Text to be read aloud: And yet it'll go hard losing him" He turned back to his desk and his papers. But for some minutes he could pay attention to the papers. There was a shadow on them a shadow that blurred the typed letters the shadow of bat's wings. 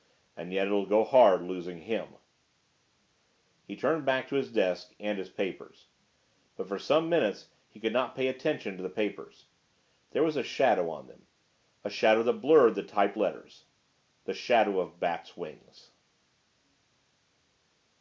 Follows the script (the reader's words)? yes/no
no